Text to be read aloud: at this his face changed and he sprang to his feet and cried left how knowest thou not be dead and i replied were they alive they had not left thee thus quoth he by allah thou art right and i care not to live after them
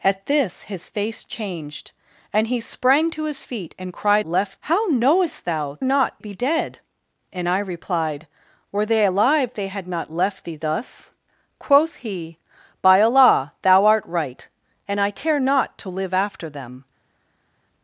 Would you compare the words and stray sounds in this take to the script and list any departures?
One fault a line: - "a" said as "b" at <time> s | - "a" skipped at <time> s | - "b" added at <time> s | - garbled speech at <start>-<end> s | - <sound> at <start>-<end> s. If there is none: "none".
none